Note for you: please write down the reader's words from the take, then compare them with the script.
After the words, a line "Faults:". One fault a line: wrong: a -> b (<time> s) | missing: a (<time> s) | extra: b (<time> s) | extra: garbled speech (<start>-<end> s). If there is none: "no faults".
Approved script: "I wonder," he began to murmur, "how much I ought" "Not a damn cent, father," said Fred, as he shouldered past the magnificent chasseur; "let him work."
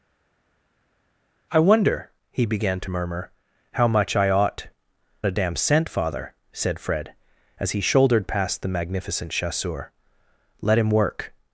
"I wonder," he began to murmur, "how much I ought" "A damn cent, father," said Fred, as he shouldered past the magnificent chasseur; "let him work."
Faults:
missing: Not (4.7 s)